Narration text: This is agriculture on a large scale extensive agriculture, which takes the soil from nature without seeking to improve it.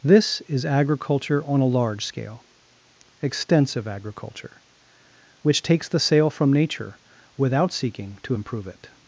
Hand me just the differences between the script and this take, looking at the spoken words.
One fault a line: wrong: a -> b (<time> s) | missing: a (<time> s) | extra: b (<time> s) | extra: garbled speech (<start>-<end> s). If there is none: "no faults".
wrong: soil -> sail (6.0 s)